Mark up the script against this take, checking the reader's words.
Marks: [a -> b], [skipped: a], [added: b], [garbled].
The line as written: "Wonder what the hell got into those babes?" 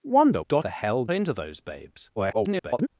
"Wonder [what -> got] the hell [skipped: got] into those babes?" [garbled]